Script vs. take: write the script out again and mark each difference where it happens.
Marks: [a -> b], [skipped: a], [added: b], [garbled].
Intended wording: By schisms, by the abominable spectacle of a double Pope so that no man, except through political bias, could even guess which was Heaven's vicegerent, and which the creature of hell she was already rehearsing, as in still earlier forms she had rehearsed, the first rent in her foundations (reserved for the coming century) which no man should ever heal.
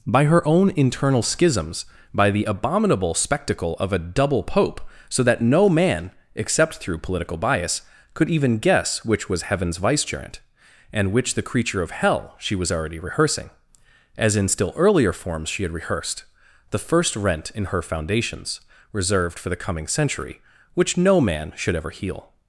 By [added: her own internal] schisms, by the abominable spectacle of a double Pope so that no man, except through political bias, could even guess which was Heaven's vicegerent, and which the creature of hell she was already rehearsing, as in still earlier forms she had rehearsed, the first rent in her foundations (reserved for the coming century) which no man should ever heal.